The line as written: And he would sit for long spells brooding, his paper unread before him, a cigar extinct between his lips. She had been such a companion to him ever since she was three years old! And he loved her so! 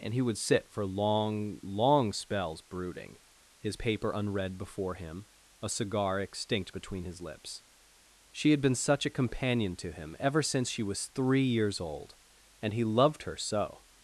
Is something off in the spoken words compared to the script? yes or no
yes